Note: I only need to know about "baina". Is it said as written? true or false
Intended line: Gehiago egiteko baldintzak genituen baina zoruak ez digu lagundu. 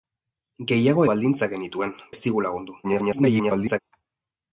false